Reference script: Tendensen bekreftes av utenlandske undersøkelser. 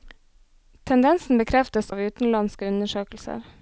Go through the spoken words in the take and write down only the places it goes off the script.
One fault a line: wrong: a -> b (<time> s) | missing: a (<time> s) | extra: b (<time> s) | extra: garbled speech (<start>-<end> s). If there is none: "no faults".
no faults